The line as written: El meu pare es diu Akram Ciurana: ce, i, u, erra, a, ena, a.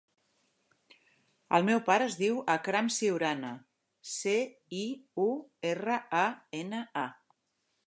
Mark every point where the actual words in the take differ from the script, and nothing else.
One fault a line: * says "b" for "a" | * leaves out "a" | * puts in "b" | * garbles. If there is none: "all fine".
all fine